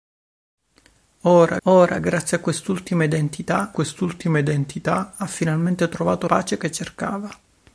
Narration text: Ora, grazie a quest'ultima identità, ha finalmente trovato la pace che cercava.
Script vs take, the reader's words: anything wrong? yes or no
yes